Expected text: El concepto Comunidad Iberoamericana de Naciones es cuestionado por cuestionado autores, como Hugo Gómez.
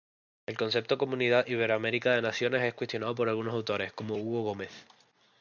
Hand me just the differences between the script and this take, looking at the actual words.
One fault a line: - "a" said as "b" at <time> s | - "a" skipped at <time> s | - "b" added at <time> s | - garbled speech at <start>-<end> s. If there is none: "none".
- "cuestionado" said as "algunos" at 3.3 s